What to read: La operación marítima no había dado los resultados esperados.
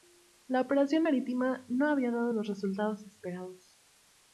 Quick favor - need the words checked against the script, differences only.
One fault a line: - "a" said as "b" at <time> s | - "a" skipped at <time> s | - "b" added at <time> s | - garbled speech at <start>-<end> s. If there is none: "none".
none